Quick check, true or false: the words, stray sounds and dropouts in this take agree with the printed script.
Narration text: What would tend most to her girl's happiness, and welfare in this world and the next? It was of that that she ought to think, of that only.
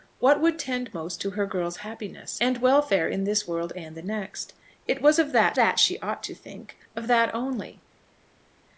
true